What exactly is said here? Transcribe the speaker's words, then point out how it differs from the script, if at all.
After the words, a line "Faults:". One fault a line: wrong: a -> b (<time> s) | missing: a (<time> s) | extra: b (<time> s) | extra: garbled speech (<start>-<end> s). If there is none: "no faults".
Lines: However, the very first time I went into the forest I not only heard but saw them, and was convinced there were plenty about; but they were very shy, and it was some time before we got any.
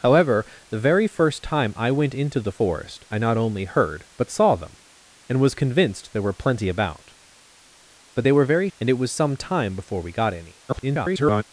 However, the very first time I went into the forest I not only heard but saw them, and was convinced there were plenty about; but they were very and it was some time before we got any. [garbled]
Faults:
missing: shy (8.7 s)
extra: garbled speech (10.7-11.4 s)